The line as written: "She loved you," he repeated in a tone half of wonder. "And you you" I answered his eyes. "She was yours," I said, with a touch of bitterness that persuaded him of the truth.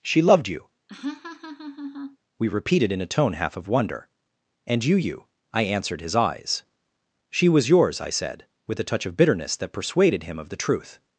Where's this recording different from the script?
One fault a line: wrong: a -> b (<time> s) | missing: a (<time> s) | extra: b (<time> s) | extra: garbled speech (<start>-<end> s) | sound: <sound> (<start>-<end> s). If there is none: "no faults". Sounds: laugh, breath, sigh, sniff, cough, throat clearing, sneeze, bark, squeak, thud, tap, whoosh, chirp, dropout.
sound: laugh (0.9-2.2 s)
wrong: he -> we (2.4 s)